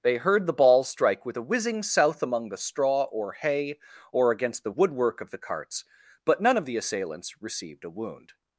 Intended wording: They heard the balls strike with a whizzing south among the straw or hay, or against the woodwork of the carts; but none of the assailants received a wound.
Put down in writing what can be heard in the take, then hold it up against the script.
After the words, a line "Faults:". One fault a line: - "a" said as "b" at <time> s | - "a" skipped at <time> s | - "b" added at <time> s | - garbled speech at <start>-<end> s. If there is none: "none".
They heard the balls strike with a whizzing south among the straw or hay, or against the woodwork of the carts; but none of the assailants received a wound.
Faults:
none